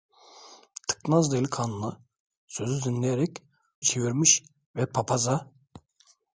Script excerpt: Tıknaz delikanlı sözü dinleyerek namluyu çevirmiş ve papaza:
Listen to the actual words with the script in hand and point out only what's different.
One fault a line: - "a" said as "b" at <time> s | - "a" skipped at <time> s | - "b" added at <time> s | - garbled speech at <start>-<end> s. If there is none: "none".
- "namluyu" skipped at 3.4 s